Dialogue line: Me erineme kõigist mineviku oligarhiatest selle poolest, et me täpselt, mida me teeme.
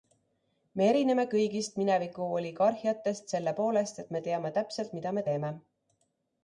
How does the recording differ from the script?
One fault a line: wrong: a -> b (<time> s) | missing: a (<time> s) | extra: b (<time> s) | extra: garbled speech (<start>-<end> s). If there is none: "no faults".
extra: teame (4.3 s)